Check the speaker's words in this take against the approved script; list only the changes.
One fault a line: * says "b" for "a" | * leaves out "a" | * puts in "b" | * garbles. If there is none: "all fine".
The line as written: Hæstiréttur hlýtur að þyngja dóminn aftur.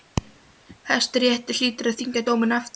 all fine